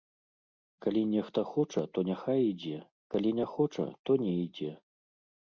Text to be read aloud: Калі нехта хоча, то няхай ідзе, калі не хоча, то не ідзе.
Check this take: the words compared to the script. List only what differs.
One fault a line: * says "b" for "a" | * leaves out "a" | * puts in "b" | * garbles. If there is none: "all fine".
all fine